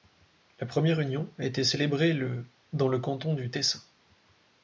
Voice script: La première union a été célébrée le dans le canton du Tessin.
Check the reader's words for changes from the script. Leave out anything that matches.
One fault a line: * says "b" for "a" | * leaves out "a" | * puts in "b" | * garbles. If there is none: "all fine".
all fine